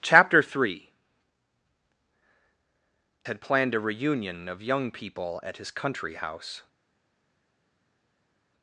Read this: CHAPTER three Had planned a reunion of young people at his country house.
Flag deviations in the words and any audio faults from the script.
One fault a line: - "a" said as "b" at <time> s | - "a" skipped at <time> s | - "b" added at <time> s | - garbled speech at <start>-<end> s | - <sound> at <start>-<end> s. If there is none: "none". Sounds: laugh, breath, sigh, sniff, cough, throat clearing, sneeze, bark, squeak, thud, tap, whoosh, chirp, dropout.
none